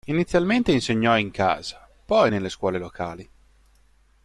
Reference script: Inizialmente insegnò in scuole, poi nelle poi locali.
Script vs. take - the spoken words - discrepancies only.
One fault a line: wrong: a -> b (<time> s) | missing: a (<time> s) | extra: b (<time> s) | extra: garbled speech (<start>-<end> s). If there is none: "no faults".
wrong: scuole -> casa (1.3 s)
wrong: poi -> scuole (2.5 s)